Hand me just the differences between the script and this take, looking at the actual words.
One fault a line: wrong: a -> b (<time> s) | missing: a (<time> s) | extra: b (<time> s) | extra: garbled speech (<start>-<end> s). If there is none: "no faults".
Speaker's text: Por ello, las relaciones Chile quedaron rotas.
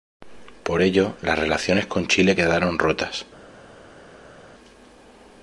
extra: con (1.9 s)